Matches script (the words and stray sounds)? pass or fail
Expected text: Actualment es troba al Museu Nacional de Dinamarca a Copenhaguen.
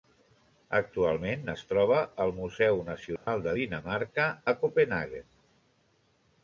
fail